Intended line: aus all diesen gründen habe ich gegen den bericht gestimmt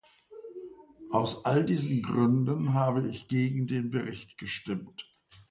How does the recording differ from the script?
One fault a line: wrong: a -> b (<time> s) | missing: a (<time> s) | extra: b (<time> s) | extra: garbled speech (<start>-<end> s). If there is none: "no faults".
no faults